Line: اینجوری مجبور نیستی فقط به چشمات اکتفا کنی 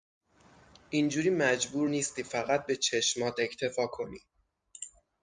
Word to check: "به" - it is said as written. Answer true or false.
true